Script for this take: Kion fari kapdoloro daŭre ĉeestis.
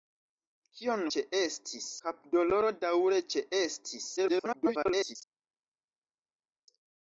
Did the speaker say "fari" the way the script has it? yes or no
no